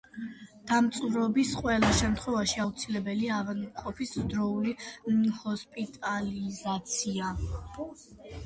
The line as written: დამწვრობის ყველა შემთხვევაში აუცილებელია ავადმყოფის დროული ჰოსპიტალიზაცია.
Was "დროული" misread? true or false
false